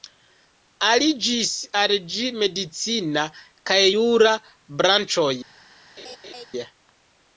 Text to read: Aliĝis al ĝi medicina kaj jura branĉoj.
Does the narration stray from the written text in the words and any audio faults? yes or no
yes